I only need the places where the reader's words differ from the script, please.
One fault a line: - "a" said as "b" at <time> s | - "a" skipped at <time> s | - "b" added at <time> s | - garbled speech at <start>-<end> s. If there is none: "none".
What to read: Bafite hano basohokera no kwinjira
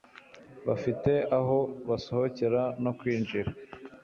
- "hano" said as "aho" at 1.4 s